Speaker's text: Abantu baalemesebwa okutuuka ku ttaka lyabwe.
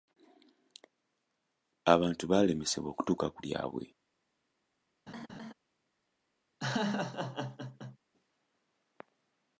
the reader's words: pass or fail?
fail